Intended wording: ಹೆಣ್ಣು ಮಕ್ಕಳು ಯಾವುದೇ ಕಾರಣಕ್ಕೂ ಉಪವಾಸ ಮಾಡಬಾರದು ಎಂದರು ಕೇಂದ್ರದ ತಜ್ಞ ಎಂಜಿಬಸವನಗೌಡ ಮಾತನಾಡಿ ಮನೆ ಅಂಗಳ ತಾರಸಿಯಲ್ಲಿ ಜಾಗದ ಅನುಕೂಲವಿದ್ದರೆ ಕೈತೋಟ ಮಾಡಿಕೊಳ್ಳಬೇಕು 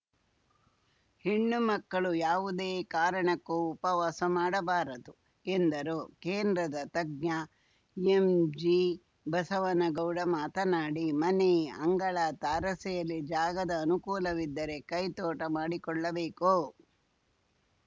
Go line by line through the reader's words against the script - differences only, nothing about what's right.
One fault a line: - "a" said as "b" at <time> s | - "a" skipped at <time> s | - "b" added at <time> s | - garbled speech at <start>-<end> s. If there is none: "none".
none